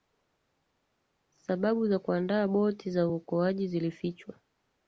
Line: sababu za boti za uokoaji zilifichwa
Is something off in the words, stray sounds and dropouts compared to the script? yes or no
yes